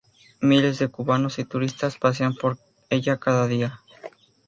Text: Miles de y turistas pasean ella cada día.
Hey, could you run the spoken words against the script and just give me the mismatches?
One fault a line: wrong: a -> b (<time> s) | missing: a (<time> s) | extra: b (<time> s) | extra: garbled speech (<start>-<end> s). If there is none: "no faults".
extra: cubanos (0.9 s)
extra: por (2.3 s)